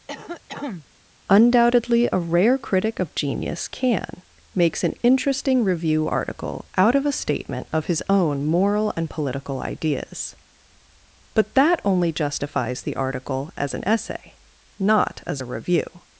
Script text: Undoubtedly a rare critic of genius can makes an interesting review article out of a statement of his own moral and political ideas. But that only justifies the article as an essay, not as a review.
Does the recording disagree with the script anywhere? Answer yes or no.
no